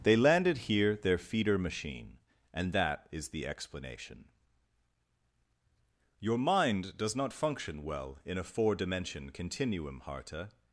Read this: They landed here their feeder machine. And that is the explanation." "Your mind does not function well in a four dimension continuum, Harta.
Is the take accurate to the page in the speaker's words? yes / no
yes